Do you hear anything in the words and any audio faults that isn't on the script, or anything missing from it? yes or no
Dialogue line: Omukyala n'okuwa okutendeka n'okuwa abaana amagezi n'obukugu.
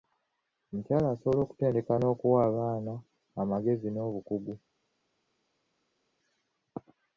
yes